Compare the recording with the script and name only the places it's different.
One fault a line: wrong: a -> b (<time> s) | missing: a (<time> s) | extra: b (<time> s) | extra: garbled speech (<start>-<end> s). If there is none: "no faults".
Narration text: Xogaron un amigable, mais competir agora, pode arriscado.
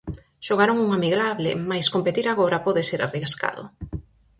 extra: ser (2.9 s)